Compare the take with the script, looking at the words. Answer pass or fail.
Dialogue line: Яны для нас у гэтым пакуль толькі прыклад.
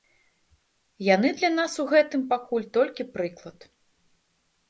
pass